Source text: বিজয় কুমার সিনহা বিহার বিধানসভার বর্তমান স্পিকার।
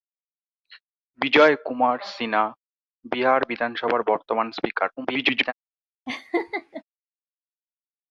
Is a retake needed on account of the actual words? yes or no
yes